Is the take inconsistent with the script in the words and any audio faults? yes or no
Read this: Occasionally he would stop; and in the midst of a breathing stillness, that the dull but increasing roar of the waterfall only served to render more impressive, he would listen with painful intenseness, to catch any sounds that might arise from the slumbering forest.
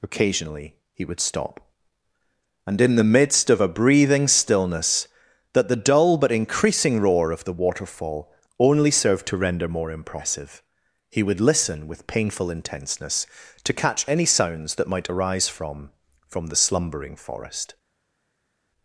yes